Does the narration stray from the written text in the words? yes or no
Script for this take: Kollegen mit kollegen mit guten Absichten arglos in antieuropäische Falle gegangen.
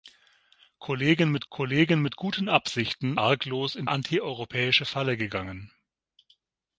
no